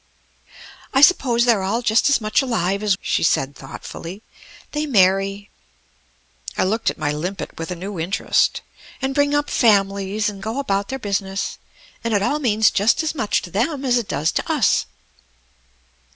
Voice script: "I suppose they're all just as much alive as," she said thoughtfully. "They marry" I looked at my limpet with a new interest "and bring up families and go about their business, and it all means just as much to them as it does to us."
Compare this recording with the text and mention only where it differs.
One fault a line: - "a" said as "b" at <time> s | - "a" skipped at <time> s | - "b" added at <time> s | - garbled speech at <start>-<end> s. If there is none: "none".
none